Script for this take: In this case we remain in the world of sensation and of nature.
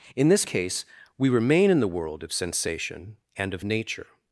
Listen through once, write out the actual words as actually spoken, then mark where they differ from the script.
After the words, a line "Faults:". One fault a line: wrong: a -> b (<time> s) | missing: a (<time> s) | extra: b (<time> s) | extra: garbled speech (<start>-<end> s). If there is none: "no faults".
In this case we remain in the world of sensation and of nature.
Faults:
no faults